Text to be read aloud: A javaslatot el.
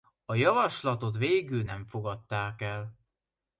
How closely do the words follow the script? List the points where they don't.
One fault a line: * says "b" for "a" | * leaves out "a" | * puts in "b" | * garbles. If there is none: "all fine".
* puts in "végül nem fogadták"